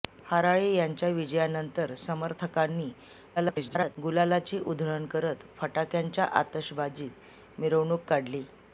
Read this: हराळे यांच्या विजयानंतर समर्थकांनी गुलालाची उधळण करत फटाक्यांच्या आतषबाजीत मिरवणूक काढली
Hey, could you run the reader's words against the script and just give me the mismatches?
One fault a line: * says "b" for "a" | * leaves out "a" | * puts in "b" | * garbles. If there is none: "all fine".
* garbles